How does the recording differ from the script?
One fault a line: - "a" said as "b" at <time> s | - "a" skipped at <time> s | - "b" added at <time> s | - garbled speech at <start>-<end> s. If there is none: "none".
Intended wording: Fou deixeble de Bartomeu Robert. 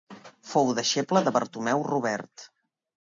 none